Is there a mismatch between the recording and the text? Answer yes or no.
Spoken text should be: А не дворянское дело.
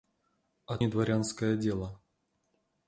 no